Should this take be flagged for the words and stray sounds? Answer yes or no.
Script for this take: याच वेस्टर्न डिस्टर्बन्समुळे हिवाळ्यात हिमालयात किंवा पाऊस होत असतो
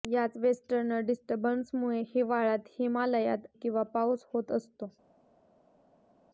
no